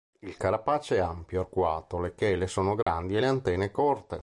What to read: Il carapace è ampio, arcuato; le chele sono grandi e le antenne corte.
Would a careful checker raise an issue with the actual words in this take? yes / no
no